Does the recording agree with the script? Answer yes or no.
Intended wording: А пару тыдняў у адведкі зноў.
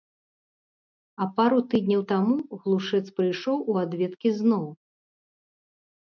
no